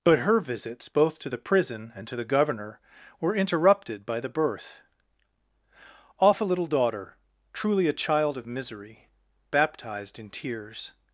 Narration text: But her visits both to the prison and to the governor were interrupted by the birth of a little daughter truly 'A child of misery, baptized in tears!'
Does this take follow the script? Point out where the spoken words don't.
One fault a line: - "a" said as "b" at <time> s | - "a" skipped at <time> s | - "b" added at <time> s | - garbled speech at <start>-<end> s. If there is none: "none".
- "of" said as "off" at 6.2 s